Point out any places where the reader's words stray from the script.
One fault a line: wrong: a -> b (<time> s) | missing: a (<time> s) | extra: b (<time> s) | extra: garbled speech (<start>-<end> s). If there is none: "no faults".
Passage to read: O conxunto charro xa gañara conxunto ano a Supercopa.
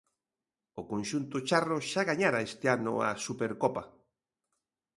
wrong: conxunto -> este (2.5 s)